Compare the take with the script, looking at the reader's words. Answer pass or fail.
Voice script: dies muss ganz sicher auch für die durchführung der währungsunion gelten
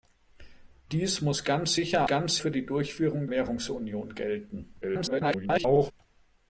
fail